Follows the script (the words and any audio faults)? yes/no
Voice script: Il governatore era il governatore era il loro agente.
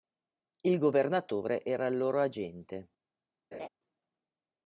no